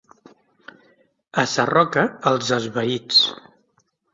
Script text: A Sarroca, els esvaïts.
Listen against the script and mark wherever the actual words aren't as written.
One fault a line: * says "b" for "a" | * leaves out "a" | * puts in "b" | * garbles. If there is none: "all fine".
all fine